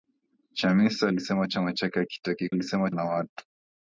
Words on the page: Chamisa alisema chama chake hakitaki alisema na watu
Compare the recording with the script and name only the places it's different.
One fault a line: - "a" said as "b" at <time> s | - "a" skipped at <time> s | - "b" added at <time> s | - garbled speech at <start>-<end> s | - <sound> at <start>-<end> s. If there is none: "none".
none